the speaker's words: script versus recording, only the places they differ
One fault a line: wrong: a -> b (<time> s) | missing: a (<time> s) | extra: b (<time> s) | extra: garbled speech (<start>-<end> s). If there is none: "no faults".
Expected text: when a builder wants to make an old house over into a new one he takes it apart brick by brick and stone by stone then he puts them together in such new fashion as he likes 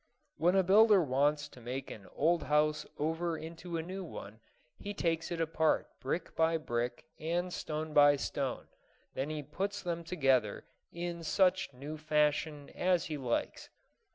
no faults